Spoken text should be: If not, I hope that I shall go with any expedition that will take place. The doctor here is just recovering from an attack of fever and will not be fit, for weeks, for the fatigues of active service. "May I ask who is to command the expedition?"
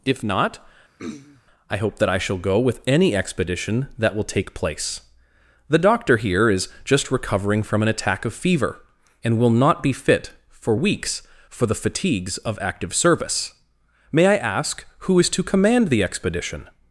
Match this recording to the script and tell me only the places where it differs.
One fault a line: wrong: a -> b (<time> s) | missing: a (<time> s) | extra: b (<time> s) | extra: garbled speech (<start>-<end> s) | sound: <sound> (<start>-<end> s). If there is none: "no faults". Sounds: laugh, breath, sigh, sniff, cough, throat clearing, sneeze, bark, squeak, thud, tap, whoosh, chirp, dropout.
sound: throat clearing (1.0-1.4 s)